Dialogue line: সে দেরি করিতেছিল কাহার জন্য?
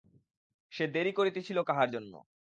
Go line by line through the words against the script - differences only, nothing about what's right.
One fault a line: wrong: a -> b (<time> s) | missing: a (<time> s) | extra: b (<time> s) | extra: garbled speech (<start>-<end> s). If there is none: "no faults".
no faults